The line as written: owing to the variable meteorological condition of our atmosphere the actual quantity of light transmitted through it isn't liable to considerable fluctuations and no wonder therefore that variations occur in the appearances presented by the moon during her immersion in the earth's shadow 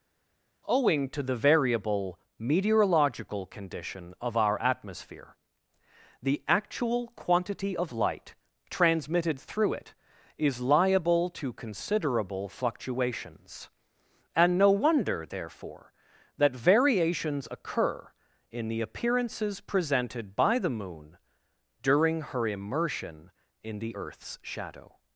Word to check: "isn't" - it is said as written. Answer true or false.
false